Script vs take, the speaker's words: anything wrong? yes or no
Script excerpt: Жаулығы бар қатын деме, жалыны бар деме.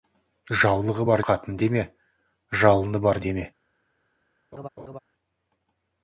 no